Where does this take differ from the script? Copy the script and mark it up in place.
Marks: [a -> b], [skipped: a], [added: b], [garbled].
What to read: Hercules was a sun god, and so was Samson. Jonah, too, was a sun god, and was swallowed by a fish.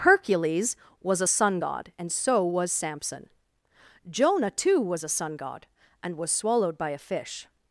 Hercules was a sun god, and so was Samson. Jonah, too, was a sun god, and was swallowed by a fish.